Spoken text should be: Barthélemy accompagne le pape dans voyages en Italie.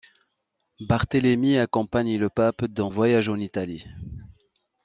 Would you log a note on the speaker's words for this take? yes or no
no